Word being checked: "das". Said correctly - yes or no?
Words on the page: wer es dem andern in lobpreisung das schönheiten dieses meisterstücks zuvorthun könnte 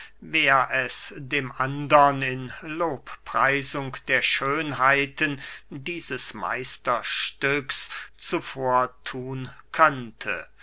no